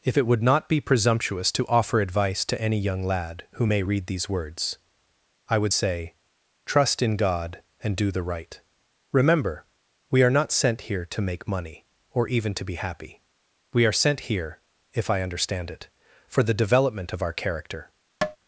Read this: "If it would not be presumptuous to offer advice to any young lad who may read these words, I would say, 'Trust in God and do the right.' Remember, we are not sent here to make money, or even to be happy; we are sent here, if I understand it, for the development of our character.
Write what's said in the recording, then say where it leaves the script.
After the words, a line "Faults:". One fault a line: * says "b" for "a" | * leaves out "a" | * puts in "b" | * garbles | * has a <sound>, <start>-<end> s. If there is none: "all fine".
"If it would not be presumptuous to offer advice to any young lad who may read these words, I would say, 'Trust in God and do the right.' Remember, we are not sent here to make money, or even to be happy; we are sent here, if I understand it, for the development of our character.
Faults:
* has a tap, 18.2-18.4 s